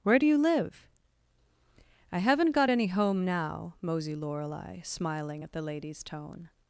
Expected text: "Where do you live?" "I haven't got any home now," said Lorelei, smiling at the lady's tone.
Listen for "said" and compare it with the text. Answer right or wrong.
wrong